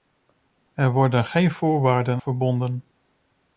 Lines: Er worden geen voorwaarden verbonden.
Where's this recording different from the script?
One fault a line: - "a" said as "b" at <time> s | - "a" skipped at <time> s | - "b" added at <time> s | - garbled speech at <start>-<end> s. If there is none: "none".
none